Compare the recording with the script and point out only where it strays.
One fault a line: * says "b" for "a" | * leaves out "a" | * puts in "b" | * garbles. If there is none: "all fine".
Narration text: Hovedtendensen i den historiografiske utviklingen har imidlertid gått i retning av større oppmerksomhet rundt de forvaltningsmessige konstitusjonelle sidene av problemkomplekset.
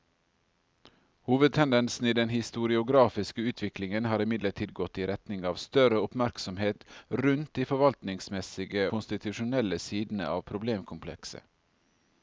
all fine